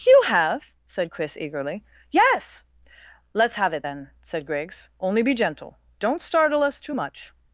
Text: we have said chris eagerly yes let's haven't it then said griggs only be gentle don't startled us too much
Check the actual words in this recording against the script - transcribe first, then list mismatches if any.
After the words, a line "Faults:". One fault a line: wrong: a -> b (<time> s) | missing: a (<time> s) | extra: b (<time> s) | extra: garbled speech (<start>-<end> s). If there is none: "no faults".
you have said chris eagerly yes let's have it then said griggs only be gentle don't startle us too much
Faults:
wrong: we -> you (0.0 s)
wrong: haven't -> have (3.6 s)
wrong: startled -> startle (6.2 s)